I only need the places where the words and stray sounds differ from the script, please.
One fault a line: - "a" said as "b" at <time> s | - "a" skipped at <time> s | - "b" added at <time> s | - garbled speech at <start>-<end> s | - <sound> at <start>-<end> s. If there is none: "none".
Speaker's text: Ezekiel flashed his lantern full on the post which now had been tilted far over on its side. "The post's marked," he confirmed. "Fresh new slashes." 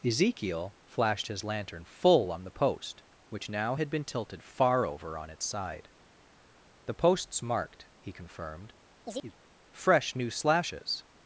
- chirp at 9.0-9.3 s